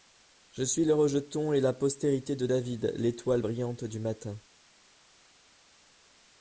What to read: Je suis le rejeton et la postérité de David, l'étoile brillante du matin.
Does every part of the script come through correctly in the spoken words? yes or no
yes